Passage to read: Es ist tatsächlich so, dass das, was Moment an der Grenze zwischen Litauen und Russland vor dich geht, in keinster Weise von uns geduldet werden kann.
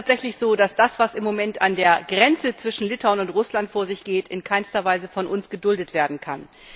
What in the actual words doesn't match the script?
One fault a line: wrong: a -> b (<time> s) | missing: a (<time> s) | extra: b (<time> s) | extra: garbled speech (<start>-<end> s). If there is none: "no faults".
extra: im (1.1 s)
wrong: dich -> sich (3.9 s)